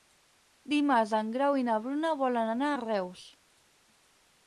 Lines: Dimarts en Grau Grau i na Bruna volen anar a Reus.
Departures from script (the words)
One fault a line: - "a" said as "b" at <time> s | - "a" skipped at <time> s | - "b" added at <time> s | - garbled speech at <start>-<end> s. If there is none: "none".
- "Grau" skipped at 1.6 s